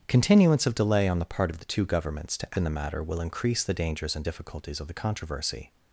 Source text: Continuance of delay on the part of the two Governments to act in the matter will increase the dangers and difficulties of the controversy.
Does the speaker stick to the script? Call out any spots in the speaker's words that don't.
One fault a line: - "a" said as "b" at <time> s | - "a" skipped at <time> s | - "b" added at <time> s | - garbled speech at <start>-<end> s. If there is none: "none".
- "act" skipped at 2.6 s